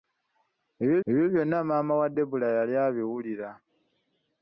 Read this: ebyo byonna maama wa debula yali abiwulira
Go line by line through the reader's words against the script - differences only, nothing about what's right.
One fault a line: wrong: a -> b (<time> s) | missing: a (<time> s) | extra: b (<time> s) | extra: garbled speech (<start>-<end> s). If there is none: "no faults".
extra: ebyo (1.1 s)